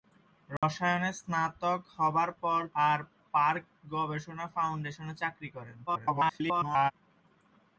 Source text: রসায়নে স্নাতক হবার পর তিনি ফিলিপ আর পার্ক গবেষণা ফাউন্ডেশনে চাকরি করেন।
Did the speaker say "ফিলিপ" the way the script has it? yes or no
no